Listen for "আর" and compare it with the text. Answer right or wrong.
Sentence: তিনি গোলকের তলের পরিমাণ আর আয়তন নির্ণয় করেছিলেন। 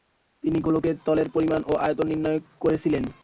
wrong